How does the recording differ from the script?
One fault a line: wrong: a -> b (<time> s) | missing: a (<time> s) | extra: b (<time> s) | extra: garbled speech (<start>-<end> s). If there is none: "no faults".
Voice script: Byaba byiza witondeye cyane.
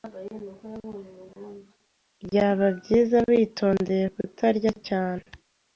extra: kutarya (4.2 s)